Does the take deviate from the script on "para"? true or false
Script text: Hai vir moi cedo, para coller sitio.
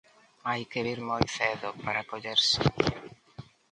false